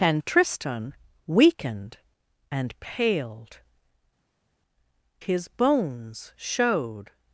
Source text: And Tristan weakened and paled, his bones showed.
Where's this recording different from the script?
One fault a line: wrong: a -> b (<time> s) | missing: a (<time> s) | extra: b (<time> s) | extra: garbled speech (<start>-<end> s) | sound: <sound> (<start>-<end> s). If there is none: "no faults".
no faults